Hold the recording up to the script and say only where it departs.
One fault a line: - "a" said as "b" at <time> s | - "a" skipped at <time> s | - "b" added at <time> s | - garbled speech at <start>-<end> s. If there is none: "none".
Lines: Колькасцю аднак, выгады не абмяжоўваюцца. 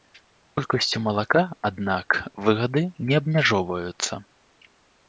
- "малака" added at 1.1 s